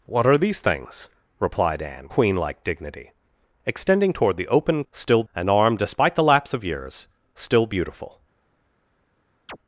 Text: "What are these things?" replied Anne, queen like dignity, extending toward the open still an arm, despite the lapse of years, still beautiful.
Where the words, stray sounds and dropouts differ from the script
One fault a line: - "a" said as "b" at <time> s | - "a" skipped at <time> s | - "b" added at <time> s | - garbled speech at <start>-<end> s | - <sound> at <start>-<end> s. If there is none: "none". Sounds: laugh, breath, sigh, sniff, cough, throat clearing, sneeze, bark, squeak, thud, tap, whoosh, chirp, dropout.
- chirp at 9.5-9.6 s